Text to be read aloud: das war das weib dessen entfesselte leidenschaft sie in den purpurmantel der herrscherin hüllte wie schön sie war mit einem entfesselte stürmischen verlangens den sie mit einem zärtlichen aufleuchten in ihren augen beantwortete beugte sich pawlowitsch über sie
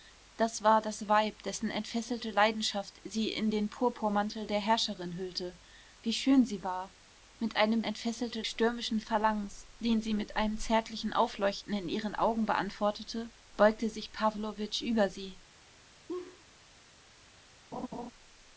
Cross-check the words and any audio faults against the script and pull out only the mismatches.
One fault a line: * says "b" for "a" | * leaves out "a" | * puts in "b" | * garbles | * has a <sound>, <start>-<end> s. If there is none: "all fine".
* has a laugh, 16.1-16.4 s
* has a laugh, 17.7-18.1 s